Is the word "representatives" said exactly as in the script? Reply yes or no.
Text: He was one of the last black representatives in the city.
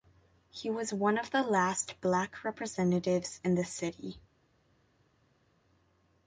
yes